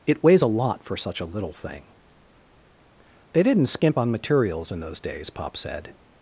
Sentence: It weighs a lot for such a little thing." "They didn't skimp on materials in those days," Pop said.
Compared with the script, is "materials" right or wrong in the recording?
right